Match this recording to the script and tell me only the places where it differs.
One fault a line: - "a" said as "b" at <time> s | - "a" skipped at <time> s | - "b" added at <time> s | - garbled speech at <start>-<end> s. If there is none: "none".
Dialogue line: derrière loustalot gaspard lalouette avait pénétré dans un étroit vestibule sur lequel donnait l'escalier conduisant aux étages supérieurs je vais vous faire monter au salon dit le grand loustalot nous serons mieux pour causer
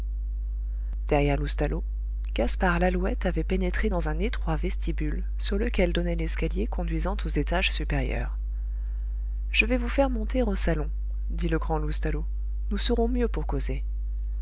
none